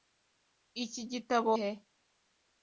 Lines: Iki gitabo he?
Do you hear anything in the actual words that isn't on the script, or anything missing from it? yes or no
no